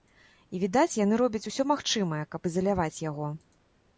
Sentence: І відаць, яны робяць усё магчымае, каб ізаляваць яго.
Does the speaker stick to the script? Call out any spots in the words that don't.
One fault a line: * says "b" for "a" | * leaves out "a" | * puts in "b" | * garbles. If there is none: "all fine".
all fine